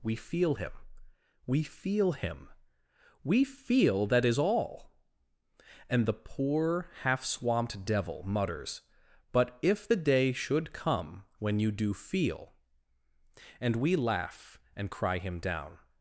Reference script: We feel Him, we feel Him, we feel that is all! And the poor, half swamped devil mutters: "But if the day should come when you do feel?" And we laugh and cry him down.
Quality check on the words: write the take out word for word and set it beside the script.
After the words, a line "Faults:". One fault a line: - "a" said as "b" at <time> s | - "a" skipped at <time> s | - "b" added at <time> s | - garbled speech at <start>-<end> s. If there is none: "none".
We feel Him, we feel Him, we feel that is all! And the poor, half swamped devil mutters: "But if the day should come when you do feel?" And we laugh and cry him down.
Faults:
none